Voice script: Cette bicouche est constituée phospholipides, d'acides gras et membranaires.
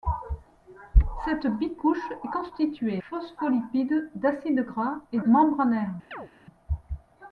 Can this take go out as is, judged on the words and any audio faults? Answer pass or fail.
fail